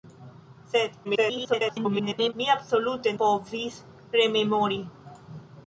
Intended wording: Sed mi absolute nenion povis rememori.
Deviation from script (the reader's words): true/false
true